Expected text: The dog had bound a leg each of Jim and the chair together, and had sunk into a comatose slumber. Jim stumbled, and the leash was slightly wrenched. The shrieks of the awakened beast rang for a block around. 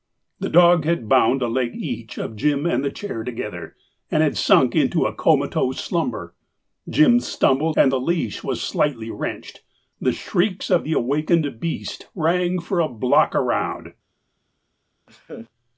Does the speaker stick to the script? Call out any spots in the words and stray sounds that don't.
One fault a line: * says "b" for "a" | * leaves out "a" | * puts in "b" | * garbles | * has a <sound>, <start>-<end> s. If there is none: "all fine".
* has a laugh, 15.1-15.5 s